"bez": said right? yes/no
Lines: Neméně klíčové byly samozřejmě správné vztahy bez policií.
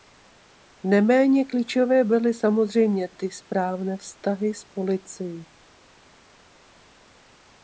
no